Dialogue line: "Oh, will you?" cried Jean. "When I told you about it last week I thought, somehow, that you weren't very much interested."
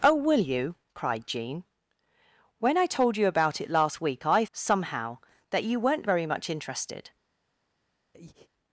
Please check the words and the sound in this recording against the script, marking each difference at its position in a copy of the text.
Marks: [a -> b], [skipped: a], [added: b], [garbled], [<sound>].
"Oh, will you?" cried Jean. "When I told you about it last week I [skipped: thought,] somehow, that you weren't very much interested." [breath]